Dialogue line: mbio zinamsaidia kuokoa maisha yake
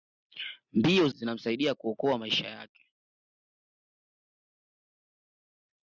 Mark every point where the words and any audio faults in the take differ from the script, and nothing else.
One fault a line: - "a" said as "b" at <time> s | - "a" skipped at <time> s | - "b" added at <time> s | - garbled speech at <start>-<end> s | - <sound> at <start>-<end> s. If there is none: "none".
none